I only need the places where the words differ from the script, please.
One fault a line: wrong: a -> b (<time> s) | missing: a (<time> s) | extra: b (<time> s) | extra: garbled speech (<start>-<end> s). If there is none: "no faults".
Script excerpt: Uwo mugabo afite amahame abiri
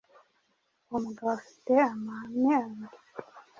no faults